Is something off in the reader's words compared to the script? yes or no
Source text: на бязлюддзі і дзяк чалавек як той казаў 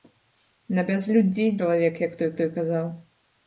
yes